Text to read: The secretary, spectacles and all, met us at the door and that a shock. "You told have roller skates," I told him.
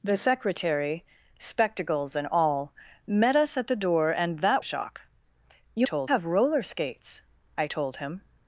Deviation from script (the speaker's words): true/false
false